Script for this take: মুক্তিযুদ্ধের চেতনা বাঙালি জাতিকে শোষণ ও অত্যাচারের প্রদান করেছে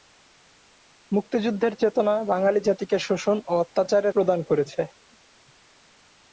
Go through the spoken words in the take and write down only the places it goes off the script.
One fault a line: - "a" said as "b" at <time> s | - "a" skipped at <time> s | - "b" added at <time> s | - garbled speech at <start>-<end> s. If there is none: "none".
none